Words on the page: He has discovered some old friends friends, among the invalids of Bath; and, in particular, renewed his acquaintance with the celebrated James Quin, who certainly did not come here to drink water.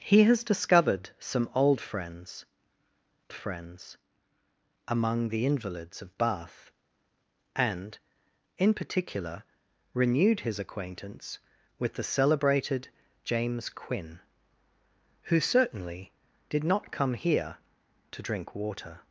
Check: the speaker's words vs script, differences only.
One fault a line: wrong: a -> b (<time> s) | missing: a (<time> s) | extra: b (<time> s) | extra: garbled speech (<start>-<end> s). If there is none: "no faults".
no faults